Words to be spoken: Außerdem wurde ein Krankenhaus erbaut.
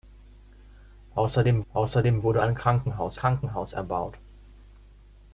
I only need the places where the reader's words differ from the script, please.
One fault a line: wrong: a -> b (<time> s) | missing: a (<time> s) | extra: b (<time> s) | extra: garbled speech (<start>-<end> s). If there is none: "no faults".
extra: außerdem (1.7 s)
extra: Krankenhaus (3.1 s)